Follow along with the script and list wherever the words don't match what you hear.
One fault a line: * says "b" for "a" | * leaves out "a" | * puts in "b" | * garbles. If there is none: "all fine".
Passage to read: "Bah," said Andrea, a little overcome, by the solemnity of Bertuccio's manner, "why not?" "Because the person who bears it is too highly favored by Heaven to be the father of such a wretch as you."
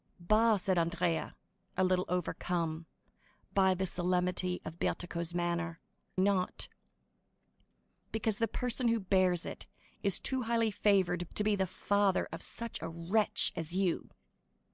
* leaves out "why"
* leaves out "by Heaven"